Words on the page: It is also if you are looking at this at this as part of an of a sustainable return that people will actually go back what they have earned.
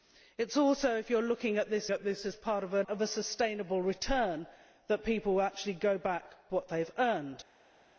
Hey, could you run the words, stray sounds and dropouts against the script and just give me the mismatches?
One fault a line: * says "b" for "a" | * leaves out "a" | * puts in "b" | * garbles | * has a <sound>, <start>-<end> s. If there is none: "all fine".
all fine